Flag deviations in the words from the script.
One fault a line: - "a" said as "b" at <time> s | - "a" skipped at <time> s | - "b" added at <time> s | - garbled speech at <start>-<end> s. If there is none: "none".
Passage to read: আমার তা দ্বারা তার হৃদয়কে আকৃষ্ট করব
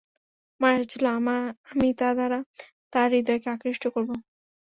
- "আশা ছিল আমি" added at 0.7 s